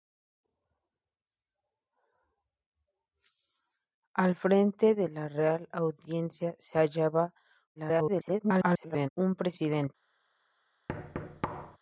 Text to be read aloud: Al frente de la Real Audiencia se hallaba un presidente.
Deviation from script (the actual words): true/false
true